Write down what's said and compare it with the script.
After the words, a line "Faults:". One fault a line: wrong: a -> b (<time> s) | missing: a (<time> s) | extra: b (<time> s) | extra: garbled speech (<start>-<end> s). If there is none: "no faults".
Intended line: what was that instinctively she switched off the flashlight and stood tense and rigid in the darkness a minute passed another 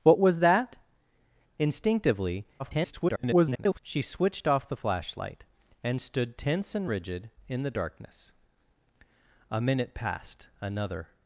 what was that instinctively [garbled] she switched off the flashlight and stood tense and rigid in the darkness a minute passed another
Faults:
extra: garbled speech (2.6-3.8 s)